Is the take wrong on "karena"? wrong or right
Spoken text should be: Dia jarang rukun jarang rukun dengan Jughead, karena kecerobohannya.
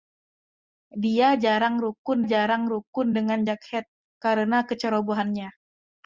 right